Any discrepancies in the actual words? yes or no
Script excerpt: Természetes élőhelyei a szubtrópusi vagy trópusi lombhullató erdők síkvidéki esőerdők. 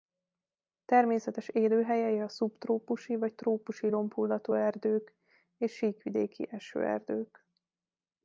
yes